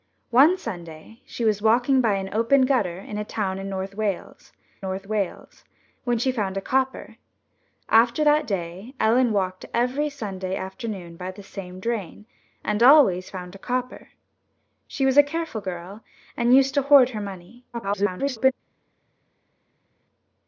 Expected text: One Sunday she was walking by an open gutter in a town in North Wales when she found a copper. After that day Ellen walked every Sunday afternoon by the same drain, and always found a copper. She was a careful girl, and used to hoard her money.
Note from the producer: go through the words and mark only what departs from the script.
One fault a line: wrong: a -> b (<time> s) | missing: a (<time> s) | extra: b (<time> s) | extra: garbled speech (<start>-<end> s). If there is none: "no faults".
extra: North Wales (4.8 s)
extra: garbled speech (17.7-18.5 s)